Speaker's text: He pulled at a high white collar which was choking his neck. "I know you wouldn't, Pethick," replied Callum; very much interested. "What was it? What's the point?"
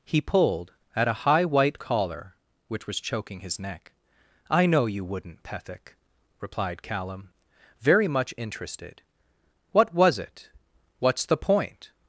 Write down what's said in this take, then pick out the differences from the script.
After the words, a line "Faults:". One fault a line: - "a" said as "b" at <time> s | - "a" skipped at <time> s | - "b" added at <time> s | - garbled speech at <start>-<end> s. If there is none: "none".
He pulled at a high white collar which was choking his neck. "I know you wouldn't, Pethick," replied Callum; very much interested. "What was it? What's the point?"
Faults:
none